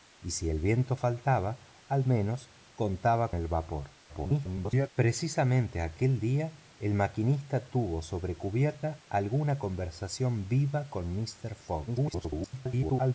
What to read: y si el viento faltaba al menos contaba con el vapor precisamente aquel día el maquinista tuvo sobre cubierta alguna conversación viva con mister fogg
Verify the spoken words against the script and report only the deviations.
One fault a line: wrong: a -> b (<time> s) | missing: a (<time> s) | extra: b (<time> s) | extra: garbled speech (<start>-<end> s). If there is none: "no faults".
missing: con (3.3 s)
extra: garbled speech (4.1-4.9 s)
extra: garbled speech (11.9-13.1 s)